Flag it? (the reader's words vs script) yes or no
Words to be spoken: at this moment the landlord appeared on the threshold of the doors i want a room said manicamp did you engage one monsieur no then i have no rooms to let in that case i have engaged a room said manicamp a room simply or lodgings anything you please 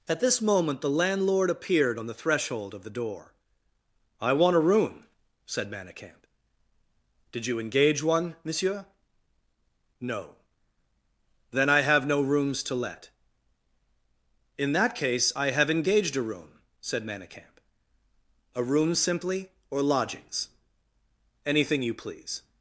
yes